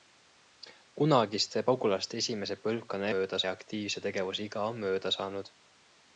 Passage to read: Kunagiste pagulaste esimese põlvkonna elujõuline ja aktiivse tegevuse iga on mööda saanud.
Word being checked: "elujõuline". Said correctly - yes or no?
no